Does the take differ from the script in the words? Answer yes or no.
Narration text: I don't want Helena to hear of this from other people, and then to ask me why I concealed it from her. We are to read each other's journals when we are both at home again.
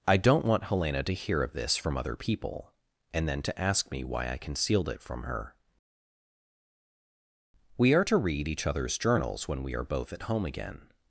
no